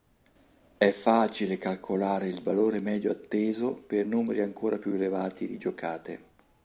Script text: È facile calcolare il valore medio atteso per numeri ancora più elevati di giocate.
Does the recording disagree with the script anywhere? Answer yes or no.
no